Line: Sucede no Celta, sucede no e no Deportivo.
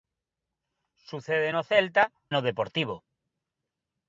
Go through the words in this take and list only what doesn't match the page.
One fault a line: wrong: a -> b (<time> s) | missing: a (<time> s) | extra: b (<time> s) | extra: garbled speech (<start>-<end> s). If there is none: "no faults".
missing: sucede no e (2.1 s)